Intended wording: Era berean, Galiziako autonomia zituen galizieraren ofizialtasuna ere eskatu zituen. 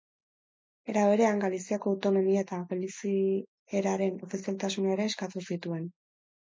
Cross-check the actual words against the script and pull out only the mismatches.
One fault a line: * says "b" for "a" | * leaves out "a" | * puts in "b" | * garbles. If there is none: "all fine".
* says "eta" for "zituen"